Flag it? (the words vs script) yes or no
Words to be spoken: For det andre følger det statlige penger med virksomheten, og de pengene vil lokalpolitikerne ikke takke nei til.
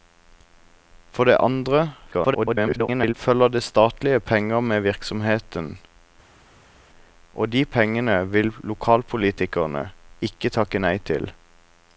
yes